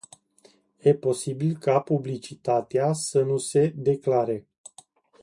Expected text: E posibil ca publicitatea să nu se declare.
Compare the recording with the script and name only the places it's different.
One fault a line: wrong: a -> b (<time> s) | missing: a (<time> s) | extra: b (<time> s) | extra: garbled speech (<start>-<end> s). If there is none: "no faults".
no faults